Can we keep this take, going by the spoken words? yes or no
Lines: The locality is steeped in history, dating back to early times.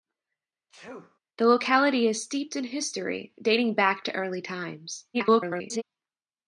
no